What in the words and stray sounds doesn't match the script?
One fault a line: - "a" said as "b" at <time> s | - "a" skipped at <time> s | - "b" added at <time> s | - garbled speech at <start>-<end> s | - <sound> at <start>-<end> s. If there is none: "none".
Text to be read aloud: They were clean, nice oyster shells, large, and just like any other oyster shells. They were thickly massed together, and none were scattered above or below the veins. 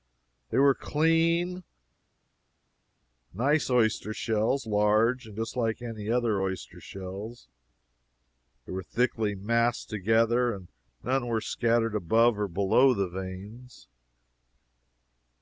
none